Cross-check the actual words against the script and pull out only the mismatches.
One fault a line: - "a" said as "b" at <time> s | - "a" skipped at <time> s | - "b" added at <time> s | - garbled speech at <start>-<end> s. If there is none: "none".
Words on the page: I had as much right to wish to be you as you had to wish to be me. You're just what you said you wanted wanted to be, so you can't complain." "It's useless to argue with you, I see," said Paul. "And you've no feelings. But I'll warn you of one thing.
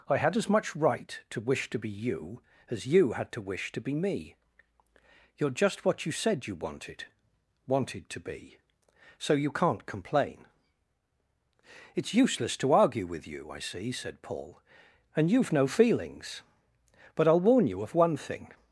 none